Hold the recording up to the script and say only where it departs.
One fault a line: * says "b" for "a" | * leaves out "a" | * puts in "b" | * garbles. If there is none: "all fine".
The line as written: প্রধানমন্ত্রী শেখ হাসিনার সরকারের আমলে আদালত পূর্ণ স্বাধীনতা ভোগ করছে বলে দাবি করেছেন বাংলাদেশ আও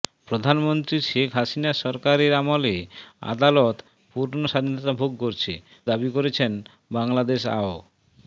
* leaves out "বলে"